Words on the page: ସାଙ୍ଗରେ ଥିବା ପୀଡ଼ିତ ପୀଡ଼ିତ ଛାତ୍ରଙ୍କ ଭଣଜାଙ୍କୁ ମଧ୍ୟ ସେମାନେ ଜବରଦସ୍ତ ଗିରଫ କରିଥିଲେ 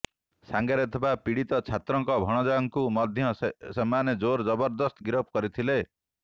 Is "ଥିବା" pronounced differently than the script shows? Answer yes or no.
no